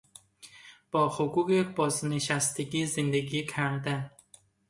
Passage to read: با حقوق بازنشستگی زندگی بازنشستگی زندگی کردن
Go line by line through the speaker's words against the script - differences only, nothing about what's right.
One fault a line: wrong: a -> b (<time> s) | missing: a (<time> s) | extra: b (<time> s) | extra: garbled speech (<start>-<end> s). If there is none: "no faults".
missing: بازنشستگی زندگی (3.5 s)